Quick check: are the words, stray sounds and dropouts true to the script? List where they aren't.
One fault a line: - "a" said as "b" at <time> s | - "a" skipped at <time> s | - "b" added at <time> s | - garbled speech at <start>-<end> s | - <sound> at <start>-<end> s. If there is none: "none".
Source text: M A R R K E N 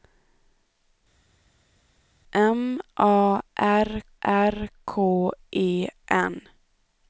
none